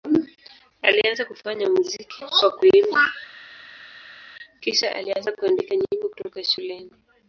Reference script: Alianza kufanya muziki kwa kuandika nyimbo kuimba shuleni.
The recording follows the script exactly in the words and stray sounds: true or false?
false